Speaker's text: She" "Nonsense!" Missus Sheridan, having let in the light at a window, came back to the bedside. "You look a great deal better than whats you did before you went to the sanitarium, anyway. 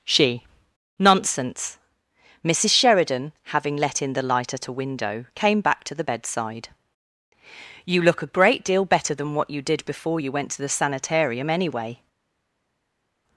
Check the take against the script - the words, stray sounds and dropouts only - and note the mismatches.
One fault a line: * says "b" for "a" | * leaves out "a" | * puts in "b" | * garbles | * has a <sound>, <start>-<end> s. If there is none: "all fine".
* says "what" for "whats"